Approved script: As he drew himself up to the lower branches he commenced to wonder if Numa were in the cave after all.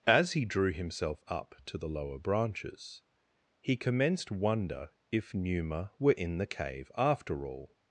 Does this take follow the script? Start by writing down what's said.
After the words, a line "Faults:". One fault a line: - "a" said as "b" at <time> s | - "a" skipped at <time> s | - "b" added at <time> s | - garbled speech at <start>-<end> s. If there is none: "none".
As he drew himself up to the lower branches he commenced wonder if Numa were in the cave after all.
Faults:
- "to" skipped at 4.3 s